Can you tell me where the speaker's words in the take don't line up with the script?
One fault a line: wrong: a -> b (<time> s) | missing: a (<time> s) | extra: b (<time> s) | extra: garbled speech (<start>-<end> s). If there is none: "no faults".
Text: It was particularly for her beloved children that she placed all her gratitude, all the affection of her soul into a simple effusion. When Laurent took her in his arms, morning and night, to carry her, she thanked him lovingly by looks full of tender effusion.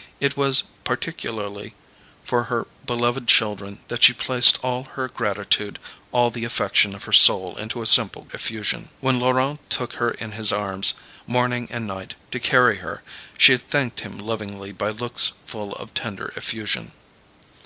no faults